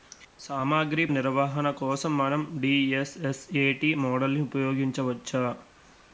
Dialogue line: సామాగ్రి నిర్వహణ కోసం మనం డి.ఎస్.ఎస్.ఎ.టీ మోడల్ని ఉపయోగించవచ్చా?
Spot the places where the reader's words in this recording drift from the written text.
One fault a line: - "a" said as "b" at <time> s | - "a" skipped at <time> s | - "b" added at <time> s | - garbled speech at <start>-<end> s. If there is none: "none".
none